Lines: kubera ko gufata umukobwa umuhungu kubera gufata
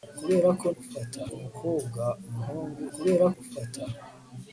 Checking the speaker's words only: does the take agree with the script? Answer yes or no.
yes